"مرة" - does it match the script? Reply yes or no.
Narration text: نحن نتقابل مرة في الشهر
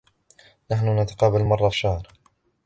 yes